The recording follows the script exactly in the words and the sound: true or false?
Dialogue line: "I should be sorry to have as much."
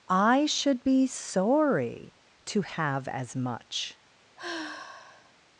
false